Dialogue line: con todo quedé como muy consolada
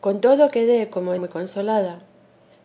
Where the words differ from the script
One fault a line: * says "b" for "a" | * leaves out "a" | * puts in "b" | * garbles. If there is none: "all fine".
all fine